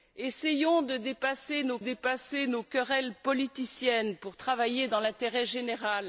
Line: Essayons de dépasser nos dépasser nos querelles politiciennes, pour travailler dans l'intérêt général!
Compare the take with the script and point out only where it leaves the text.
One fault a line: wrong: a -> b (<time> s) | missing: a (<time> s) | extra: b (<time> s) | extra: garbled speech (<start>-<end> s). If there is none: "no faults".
no faults